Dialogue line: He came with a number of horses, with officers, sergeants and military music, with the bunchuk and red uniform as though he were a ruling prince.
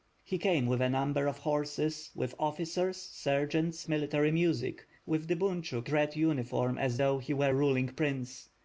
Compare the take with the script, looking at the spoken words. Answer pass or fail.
fail